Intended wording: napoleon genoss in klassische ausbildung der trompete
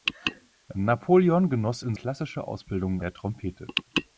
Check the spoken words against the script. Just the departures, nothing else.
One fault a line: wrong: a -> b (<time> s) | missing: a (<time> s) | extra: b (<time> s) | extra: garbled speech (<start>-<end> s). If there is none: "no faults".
no faults